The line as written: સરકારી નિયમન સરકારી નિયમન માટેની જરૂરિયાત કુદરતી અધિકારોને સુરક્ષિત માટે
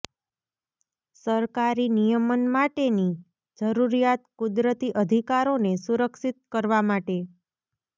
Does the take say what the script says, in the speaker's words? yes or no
no